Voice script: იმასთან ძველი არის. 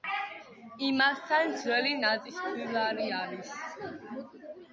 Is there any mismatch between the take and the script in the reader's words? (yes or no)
yes